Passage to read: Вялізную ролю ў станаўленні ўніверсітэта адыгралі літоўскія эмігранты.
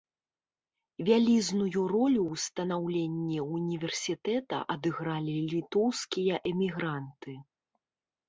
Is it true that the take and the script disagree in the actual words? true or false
false